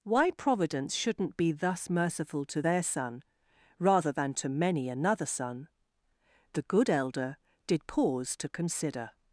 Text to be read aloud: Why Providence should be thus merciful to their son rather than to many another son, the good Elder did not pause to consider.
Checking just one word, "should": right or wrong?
wrong